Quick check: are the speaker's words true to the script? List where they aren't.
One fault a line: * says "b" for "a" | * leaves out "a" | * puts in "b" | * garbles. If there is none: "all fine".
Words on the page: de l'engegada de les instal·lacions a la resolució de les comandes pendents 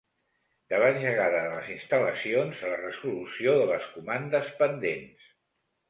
all fine